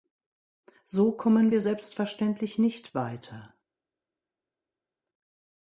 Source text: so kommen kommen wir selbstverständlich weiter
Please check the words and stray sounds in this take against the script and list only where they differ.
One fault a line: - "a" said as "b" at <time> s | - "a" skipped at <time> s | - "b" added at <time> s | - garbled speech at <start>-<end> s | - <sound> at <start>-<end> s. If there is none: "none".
- "kommen" skipped at 1.5 s
- "nicht" added at 2.6 s